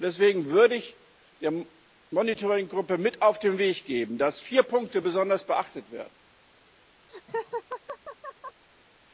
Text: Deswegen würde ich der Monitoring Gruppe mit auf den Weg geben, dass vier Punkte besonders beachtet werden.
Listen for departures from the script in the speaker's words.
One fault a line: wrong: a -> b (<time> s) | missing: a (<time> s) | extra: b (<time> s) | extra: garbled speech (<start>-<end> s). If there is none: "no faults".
no faults